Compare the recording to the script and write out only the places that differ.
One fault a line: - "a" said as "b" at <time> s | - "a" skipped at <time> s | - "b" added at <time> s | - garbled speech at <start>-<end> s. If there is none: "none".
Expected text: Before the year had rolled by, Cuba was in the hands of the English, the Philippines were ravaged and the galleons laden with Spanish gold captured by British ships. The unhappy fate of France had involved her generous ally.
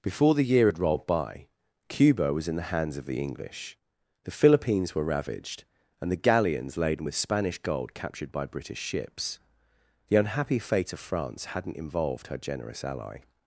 - "had" said as "hadn't" at 11.5 s